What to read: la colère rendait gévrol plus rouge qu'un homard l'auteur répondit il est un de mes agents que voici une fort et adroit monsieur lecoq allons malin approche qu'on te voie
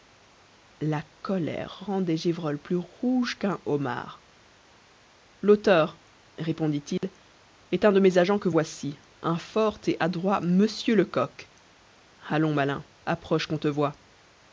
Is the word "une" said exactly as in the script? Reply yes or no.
no